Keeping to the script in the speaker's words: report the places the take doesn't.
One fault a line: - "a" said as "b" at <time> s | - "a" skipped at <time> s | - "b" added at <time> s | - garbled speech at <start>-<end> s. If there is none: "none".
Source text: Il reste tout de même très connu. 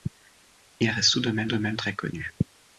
- "de même" added at 1.5 s